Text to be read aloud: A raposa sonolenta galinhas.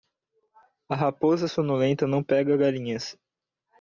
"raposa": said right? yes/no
yes